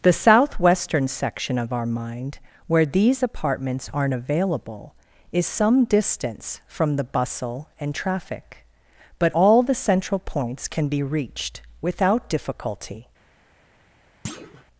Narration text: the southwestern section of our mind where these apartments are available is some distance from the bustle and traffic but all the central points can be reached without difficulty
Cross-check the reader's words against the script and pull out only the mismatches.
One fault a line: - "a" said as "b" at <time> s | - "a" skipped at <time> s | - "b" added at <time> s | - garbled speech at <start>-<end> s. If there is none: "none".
- "are" said as "aren't" at 3.9 s